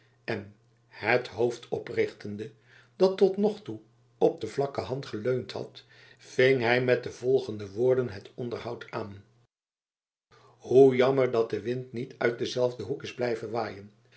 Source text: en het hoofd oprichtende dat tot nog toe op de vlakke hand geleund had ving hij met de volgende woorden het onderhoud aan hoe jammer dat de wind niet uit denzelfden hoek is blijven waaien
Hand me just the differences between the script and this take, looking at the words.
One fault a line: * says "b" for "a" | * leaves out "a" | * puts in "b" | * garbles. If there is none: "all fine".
all fine